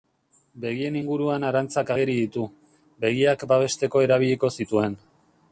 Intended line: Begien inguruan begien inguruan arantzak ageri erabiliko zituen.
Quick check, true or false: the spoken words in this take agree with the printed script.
false